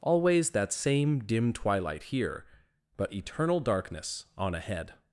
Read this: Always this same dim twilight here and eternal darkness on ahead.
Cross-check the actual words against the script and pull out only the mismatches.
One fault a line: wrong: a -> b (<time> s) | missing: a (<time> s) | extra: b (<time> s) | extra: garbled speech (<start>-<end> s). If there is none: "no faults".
wrong: this -> that (0.5 s)
wrong: and -> but (3.0 s)